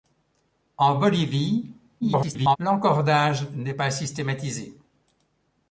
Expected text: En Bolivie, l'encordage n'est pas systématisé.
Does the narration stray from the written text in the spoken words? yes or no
yes